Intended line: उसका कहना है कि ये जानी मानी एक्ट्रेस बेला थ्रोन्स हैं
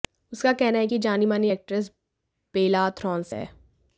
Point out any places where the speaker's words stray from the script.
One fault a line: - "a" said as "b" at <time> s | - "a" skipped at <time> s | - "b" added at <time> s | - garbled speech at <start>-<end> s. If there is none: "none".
none